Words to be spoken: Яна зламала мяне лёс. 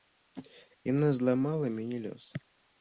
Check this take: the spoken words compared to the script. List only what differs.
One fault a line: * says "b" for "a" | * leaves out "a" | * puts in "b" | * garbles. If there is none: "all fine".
all fine